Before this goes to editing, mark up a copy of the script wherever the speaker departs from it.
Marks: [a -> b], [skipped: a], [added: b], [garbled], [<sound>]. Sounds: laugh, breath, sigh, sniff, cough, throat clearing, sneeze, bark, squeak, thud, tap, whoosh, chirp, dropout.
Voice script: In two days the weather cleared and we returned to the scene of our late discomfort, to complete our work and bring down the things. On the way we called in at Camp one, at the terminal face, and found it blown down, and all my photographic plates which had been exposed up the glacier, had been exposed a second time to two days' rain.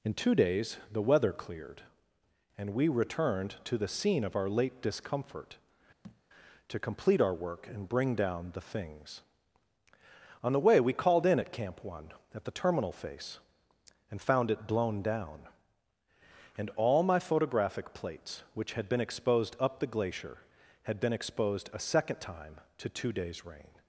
In two days the weather cleared and we returned to the scene of our late discomfort, [thud] to complete our work and bring down the things. On the way we called in at Camp one, at the terminal face, and found it blown down, and all my photographic plates which had been exposed up the glacier, had been exposed a second time to two days' rain.